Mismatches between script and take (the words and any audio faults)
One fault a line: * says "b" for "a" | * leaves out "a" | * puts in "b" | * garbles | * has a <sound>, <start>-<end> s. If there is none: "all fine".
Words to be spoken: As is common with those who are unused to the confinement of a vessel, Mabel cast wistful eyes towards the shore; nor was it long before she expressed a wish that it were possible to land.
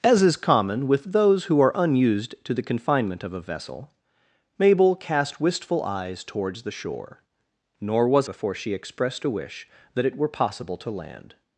* leaves out "it long"